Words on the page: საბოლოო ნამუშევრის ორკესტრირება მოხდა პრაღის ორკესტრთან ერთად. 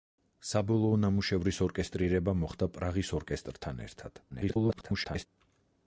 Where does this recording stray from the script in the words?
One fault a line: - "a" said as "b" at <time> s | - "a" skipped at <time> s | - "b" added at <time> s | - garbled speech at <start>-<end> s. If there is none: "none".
- garbled speech at 4.3-5.3 s